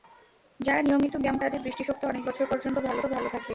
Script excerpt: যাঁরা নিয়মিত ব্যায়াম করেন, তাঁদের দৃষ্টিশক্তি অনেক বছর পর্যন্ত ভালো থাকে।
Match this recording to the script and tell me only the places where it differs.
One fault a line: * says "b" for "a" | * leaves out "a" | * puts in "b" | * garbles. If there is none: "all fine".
* leaves out "করেন"
* puts in "ভালো"